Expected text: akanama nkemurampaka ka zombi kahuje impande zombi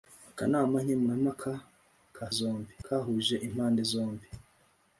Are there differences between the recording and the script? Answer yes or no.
no